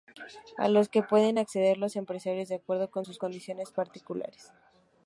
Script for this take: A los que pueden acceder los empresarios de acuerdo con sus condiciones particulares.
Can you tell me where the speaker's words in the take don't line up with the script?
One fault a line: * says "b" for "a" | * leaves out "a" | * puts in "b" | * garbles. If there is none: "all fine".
all fine